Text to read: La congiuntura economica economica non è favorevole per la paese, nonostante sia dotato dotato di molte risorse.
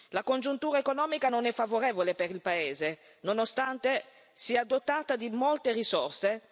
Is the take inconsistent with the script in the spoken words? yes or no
yes